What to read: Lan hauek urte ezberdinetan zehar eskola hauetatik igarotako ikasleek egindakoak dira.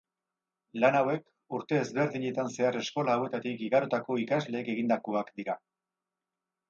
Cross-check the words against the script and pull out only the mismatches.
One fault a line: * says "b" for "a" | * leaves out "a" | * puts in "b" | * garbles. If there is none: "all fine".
all fine